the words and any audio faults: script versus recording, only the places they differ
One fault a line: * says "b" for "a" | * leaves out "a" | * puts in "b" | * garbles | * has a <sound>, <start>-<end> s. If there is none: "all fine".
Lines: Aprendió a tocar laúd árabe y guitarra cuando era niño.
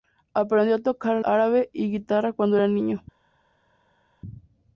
* leaves out "laúd"